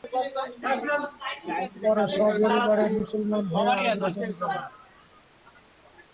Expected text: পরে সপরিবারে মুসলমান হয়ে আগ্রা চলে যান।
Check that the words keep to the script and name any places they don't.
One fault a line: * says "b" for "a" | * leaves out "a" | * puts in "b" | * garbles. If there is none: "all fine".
all fine